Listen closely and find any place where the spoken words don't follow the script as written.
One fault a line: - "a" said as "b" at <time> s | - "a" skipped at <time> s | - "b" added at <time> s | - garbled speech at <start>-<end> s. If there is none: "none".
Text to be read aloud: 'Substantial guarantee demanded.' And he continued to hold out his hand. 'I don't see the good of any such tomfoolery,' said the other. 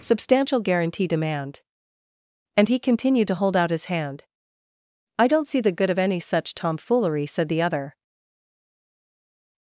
- "demanded" said as "demand" at 1.1 s